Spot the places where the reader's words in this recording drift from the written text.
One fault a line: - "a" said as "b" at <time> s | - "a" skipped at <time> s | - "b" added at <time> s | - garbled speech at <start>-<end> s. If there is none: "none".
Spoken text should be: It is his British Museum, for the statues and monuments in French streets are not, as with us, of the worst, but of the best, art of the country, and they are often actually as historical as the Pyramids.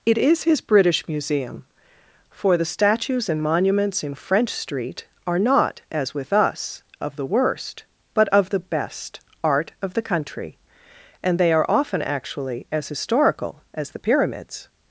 - "streets" said as "street" at 4.5 s